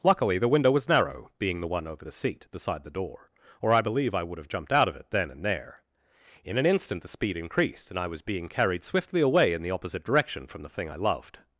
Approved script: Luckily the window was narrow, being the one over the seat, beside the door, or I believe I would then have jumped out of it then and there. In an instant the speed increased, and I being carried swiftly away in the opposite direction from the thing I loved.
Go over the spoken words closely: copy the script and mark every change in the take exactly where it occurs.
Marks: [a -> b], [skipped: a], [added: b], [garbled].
Luckily the window was narrow, being the one over the seat, beside the door, or I believe I would [skipped: then] have jumped out of it then and there. In an instant the speed increased, and I [added: was] being carried swiftly away in the opposite direction from the thing I loved.